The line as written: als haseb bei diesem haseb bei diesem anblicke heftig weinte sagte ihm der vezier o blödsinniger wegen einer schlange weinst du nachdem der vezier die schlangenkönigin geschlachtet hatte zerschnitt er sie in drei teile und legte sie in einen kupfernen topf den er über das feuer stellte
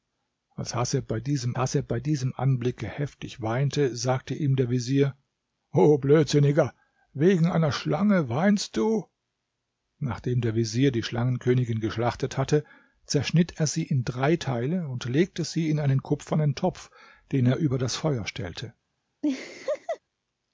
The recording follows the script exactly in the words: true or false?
true